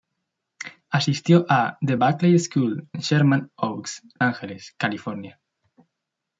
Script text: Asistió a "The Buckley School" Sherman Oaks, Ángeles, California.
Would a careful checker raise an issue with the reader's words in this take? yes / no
no